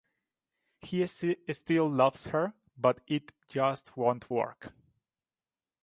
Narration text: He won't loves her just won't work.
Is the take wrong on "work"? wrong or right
right